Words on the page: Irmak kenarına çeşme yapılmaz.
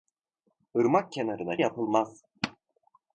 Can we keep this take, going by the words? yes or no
no